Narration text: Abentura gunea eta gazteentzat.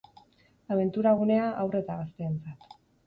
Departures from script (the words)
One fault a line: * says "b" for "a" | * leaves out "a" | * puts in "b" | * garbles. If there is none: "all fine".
* puts in "haur"